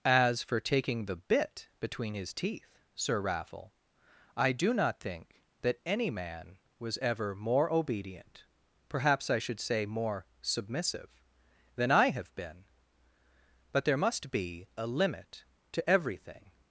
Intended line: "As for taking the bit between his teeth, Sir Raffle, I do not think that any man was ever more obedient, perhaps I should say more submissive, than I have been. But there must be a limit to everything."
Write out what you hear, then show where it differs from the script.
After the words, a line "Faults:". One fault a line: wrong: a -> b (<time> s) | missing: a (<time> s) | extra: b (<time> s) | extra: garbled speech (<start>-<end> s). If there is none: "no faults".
"As for taking the bit between his teeth, Sir Raffle, I do not think that any man was ever more obedient, perhaps I should say more submissive, than I have been. But there must be a limit to everything."
Faults:
no faults